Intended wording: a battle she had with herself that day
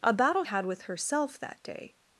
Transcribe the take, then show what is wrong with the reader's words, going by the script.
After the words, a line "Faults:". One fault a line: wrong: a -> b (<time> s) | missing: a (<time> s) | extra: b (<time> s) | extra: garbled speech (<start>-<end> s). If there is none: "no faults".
a battle had with herself that day
Faults:
missing: she (0.4 s)